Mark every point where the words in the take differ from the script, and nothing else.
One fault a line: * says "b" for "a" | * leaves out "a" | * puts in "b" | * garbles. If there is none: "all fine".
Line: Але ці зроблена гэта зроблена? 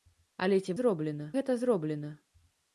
all fine